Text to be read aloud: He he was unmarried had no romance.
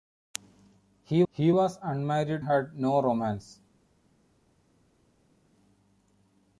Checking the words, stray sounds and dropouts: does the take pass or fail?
pass